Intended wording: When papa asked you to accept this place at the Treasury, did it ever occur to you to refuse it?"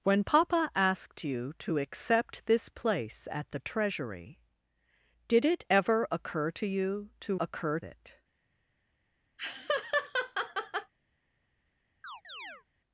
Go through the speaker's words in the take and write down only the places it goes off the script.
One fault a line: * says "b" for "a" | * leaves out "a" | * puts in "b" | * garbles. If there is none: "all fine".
* says "occur" for "refuse"